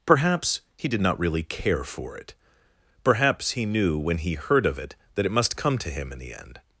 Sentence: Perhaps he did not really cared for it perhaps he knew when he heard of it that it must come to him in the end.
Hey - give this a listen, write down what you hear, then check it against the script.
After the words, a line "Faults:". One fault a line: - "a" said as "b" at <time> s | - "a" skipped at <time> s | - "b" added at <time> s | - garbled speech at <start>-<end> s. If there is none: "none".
Perhaps he did not really care for it perhaps he knew when he heard of it that it must come to him in the end.
Faults:
- "cared" said as "care" at 1.4 s